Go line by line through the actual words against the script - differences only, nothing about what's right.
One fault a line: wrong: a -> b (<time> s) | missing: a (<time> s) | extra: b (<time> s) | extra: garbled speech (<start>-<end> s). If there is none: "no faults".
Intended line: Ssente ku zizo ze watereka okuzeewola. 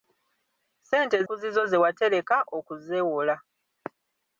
no faults